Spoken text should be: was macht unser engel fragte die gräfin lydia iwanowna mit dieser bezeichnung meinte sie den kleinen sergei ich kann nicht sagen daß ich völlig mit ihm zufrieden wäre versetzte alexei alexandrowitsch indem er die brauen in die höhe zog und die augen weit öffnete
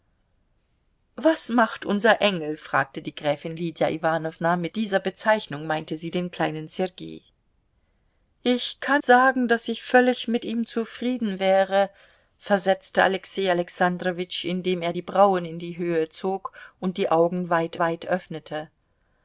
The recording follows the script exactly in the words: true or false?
false